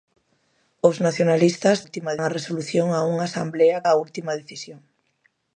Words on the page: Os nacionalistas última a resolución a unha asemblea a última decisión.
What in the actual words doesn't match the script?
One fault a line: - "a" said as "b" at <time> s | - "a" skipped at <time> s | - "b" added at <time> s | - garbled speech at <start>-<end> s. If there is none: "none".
none